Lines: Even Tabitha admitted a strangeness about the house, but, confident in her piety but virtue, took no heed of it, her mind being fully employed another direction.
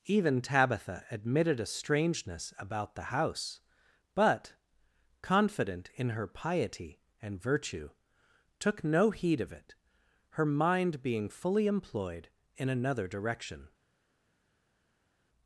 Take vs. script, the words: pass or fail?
fail